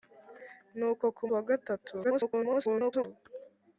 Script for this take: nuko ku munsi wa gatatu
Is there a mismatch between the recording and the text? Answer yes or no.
yes